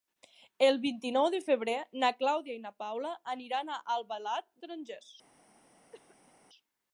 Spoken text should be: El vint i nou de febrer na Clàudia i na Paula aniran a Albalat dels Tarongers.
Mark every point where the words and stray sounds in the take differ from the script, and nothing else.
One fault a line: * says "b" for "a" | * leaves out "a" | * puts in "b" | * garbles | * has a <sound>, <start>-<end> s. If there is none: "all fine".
* leaves out "dels"
* has a cough, 5.9-6.3 s